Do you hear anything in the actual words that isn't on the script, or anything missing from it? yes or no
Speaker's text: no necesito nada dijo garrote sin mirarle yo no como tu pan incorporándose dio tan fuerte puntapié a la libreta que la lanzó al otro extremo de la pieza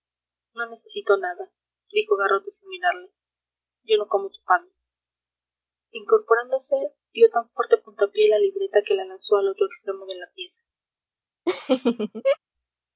no